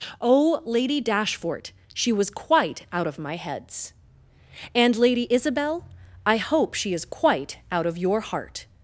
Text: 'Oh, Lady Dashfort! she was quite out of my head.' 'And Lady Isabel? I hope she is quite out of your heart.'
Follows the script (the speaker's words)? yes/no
no